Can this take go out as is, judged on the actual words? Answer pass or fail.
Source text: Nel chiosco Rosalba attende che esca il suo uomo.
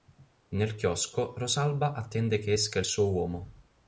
pass